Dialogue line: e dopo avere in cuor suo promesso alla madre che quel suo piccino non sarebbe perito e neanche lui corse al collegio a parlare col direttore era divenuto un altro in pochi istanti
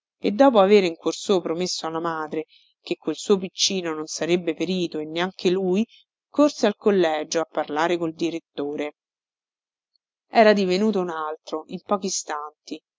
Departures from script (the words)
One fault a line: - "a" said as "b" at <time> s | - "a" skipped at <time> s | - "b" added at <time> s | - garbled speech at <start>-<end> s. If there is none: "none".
none